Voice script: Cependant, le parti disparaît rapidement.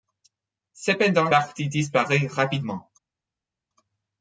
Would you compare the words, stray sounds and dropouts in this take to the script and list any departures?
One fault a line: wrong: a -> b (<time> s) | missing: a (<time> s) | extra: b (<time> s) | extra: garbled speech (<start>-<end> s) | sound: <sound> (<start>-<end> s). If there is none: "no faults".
missing: le (1.3 s)